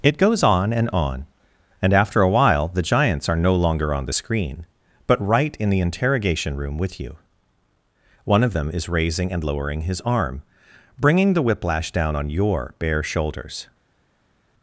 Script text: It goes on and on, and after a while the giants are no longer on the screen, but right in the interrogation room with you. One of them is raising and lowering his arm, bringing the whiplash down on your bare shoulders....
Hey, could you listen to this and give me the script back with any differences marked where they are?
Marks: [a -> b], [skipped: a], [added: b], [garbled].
It goes on and on, and after a while the giants are no longer on the screen, but right in the interrogation room with you. One of them is raising and lowering his arm, bringing the whiplash down on your bare shoulders....